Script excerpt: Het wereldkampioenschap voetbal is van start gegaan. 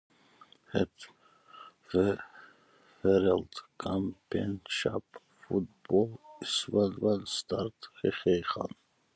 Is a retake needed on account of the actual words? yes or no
yes